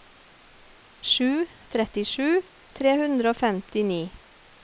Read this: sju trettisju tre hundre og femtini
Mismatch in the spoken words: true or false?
false